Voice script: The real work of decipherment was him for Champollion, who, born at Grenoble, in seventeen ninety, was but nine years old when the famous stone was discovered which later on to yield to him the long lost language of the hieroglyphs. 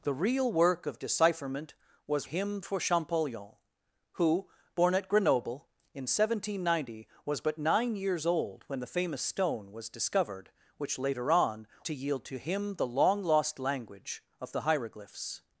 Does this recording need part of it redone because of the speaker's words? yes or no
no